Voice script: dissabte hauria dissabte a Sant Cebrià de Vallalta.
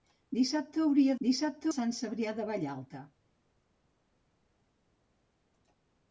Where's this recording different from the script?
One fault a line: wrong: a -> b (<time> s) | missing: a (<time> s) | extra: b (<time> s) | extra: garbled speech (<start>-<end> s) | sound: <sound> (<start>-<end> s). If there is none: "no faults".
no faults